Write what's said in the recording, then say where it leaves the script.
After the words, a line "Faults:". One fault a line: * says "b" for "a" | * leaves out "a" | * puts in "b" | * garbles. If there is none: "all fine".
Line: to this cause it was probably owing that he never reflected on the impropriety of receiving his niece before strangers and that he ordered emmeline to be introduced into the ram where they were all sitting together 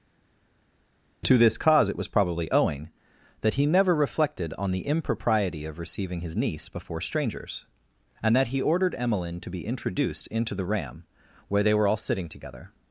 to this cause it was probably owing that he never reflected on the impropriety of receiving his niece before strangers and that he ordered emmeline to be introduced into the ram where they were all sitting together
Faults:
all fine